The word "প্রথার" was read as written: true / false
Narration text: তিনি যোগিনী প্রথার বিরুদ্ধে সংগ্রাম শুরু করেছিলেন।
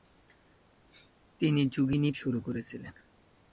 false